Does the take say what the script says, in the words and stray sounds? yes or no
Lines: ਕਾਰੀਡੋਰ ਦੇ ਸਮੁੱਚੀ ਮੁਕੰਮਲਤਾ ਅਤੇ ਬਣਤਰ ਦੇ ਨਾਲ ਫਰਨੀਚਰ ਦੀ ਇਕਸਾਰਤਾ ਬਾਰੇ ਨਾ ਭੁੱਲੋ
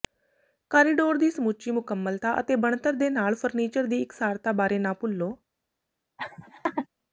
no